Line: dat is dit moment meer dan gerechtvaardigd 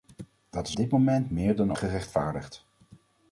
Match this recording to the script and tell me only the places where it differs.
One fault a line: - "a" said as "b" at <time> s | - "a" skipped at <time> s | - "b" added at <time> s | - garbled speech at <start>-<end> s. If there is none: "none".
none